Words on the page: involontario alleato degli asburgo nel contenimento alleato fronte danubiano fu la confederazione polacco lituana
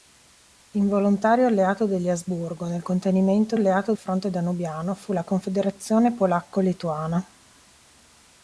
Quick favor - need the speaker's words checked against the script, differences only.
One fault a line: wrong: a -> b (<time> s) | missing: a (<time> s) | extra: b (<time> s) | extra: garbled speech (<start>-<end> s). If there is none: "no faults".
no faults